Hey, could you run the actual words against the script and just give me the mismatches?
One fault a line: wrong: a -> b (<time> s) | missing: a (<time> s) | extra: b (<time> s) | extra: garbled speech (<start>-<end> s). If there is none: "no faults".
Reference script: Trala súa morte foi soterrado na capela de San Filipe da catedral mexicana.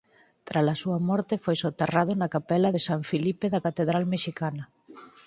no faults